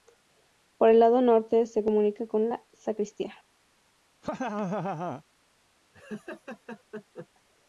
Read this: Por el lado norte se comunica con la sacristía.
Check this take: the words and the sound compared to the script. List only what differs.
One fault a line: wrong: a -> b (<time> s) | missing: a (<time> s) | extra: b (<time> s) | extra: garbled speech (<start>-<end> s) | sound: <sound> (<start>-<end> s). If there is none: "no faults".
sound: laugh (4.2-5.2 s)
sound: laugh (5.9-7.3 s)